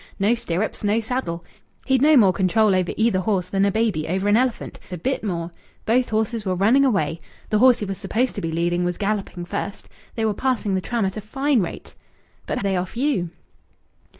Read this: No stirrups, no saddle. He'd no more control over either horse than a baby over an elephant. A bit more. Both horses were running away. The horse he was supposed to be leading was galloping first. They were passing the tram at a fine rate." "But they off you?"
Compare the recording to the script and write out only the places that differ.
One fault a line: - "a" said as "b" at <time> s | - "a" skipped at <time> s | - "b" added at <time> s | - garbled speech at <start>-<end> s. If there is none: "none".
none